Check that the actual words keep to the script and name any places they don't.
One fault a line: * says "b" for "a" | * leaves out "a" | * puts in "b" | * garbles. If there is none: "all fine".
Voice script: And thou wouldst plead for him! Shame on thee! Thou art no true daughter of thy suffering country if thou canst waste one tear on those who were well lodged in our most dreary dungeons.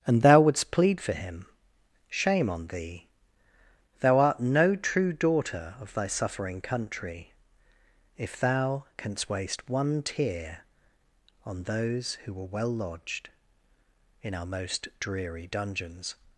all fine